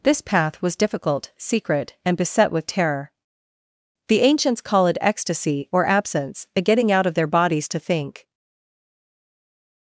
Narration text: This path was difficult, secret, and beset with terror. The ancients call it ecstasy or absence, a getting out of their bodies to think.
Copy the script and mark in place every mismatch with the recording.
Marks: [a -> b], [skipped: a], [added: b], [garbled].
This path was difficult, secret, and beset with terror. The ancients call it ecstasy or absence, a getting out of their bodies to think.